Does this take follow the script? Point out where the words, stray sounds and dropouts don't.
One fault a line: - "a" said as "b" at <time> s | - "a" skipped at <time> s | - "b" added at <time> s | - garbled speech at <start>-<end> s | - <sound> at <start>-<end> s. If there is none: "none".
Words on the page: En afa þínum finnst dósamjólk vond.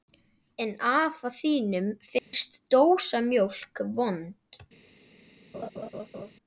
- dropout at 2.2-2.3 s
- laugh at 5.5-6.3 s